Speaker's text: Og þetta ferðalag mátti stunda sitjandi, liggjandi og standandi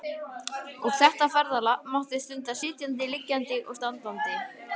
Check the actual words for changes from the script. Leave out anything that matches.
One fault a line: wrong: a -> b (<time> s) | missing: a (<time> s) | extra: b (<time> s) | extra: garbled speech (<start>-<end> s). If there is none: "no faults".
no faults